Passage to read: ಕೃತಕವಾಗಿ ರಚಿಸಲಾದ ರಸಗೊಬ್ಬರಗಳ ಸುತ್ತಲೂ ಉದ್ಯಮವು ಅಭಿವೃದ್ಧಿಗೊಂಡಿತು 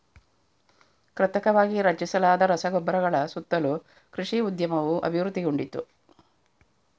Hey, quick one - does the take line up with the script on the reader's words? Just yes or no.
no